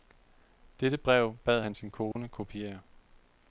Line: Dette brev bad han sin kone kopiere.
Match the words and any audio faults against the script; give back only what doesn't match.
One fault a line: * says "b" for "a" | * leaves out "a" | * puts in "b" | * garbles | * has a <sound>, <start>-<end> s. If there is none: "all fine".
* has a dropout, 2.1-2.2 s